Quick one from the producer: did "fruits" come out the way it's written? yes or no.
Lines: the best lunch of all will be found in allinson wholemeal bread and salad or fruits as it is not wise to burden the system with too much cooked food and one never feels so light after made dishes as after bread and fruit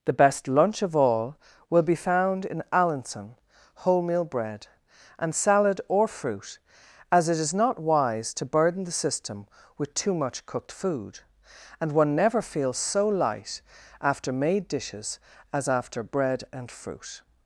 no